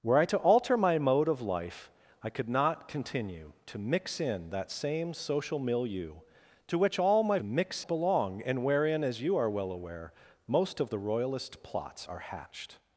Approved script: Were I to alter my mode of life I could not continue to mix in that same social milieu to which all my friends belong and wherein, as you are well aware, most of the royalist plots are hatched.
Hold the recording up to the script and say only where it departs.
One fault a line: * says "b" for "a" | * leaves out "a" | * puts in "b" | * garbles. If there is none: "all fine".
* says "mix" for "friends"